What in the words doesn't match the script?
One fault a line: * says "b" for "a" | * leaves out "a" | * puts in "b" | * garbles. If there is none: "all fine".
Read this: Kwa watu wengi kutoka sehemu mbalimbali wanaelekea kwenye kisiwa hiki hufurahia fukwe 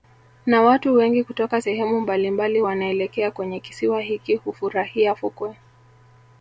* says "Na" for "Kwa"